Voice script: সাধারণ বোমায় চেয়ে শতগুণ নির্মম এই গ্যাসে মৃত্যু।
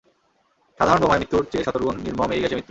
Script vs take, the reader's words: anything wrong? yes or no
yes